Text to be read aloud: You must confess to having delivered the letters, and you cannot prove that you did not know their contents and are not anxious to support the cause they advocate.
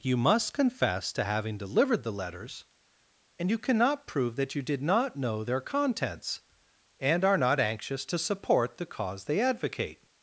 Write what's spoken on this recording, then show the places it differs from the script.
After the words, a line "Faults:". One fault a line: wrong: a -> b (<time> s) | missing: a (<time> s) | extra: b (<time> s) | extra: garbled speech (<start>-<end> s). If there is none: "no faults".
You must confess to having delivered the letters, and you cannot prove that you did not know their contents and are not anxious to support the cause they advocate.
Faults:
no faults